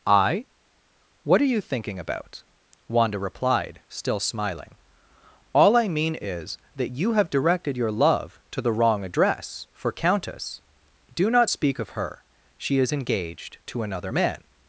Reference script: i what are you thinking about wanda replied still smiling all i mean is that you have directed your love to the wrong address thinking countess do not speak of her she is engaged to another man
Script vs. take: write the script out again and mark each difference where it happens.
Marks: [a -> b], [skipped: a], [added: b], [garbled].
i what are you thinking about wanda replied still smiling all i mean is that you have directed your love to the wrong address [thinking -> for] countess do not speak of her she is engaged to another man